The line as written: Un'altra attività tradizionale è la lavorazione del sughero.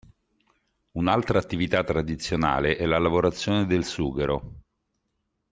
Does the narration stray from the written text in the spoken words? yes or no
no